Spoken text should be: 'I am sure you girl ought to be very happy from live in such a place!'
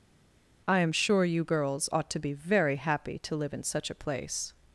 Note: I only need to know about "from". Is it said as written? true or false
false